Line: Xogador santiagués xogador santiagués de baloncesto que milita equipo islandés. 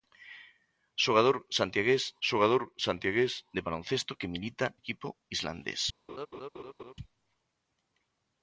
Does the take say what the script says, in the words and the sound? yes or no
no